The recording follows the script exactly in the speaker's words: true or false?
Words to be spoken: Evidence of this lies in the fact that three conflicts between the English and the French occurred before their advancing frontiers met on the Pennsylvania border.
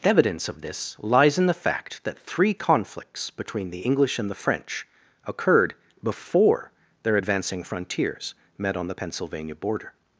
true